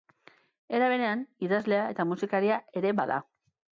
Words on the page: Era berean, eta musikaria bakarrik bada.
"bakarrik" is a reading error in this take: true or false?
true